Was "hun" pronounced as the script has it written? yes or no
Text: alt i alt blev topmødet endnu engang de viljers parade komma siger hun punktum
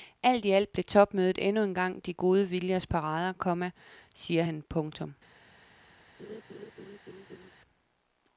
no